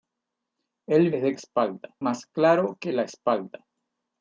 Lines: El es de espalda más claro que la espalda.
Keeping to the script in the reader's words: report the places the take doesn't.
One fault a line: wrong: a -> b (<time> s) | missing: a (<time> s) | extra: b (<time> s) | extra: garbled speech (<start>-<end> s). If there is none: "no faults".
no faults